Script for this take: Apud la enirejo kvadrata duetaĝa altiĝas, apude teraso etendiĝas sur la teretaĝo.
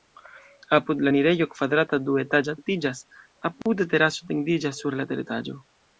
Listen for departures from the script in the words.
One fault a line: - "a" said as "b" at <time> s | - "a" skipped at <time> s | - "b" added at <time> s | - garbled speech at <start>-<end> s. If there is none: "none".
none